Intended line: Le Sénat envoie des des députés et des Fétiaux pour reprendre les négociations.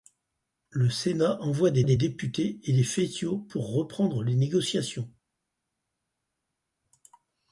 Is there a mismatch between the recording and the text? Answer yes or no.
no